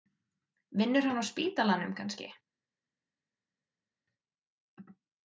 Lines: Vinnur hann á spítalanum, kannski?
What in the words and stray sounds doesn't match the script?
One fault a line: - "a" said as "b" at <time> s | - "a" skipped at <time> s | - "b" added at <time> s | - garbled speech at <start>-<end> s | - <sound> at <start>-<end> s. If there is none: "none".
none